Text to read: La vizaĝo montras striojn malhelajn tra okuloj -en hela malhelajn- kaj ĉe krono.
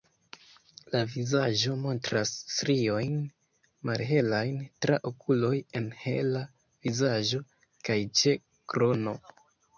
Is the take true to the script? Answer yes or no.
no